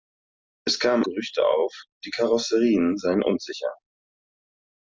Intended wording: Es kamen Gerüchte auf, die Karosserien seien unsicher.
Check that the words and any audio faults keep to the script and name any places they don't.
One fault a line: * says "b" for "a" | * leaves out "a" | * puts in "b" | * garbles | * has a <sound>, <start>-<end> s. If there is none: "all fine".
all fine